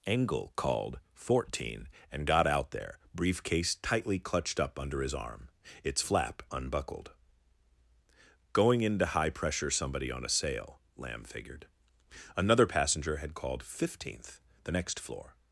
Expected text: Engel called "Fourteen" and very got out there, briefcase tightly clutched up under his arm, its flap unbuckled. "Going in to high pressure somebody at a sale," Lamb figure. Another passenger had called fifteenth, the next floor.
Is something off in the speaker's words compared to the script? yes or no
yes